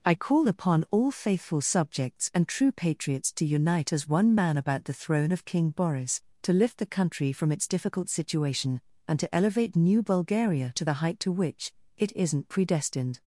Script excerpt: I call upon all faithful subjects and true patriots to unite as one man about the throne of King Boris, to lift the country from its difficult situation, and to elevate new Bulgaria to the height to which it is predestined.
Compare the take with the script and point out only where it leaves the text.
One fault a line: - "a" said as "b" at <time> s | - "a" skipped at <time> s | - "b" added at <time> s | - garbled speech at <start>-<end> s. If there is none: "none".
- "is" said as "isn't" at 12.1 s